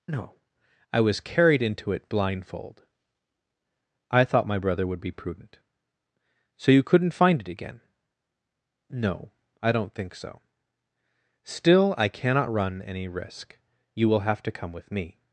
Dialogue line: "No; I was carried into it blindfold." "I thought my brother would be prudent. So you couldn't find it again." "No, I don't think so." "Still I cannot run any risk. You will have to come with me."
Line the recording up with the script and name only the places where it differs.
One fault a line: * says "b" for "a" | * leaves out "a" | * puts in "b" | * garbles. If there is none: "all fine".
all fine